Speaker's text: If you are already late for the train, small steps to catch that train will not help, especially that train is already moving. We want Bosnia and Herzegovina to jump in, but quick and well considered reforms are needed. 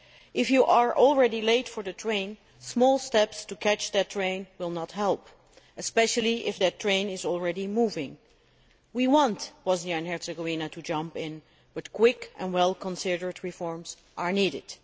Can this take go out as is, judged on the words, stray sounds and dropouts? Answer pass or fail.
fail